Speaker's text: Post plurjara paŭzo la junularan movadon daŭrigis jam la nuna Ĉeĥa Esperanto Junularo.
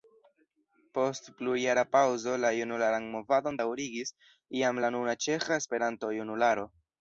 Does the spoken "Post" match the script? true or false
true